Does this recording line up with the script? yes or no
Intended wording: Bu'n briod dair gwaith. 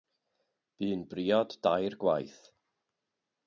yes